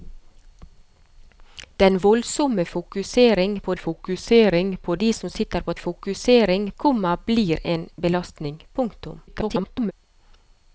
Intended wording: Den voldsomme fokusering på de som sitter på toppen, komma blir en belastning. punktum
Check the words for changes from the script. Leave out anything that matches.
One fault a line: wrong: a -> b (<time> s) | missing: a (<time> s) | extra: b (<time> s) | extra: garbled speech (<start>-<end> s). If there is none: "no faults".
extra: fokusering på (3.8 s)
wrong: toppen -> fokusering (5.8 s)
extra: garbled speech (9.3-9.9 s)